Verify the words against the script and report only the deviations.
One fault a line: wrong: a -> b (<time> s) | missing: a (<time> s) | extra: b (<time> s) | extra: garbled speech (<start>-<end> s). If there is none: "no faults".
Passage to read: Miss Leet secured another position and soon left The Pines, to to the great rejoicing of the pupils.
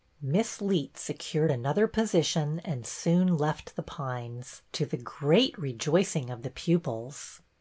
missing: to (4.8 s)